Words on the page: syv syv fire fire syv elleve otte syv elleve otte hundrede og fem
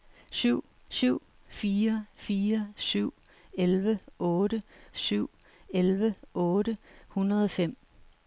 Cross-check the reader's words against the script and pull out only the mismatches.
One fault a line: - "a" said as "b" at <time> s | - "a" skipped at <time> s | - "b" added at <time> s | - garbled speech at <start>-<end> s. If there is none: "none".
none